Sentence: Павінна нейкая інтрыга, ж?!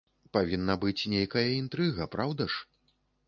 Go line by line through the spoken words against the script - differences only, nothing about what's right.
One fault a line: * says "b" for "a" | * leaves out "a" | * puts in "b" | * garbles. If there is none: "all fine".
* puts in "быць"
* puts in "праўда"